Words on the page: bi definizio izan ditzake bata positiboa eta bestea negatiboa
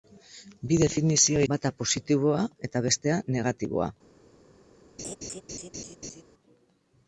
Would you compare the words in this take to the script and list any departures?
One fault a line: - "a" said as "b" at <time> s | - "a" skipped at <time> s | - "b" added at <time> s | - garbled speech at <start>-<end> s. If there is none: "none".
- "izan ditzake" skipped at 1.4 s